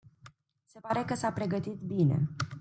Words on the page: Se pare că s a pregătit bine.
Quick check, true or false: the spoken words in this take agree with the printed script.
true